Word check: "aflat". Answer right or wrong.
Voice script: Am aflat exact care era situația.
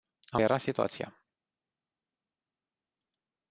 wrong